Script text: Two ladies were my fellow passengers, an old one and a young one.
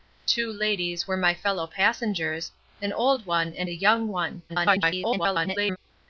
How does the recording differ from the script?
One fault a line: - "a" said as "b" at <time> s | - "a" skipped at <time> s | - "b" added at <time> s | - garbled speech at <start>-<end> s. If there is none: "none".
- garbled speech at 4.5-5.8 s